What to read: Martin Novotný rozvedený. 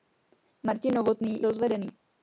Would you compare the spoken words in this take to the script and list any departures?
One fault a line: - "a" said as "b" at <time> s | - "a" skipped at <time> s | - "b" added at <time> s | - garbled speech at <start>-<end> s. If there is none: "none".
none